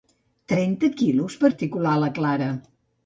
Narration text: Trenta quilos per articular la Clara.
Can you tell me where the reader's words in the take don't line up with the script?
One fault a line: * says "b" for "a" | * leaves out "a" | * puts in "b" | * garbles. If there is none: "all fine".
all fine